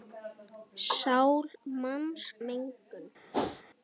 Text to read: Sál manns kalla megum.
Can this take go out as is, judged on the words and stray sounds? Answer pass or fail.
fail